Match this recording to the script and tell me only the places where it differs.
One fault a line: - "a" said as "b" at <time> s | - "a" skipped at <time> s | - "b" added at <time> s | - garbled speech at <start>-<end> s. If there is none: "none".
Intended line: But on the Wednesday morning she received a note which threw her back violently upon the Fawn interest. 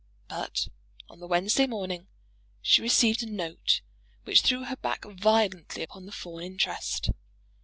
none